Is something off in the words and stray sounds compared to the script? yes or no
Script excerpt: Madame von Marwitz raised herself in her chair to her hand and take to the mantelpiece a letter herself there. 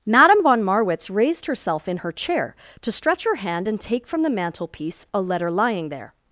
yes